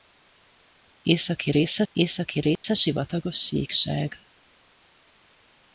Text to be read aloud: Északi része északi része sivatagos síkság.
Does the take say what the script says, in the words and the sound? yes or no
no